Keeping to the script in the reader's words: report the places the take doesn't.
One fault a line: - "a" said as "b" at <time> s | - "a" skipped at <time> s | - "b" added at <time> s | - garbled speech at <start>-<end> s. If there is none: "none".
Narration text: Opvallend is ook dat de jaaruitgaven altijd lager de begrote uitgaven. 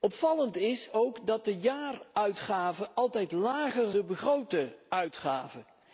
none